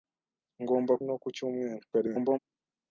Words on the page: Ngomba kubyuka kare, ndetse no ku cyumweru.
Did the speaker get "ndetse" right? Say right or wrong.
wrong